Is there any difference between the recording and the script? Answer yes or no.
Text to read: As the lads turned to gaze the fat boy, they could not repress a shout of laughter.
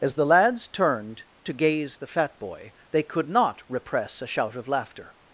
no